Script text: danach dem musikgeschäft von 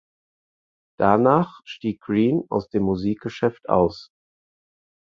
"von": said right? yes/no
no